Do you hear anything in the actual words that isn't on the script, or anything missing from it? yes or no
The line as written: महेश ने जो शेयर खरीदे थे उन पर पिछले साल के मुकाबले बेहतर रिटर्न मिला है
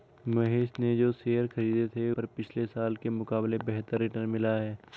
yes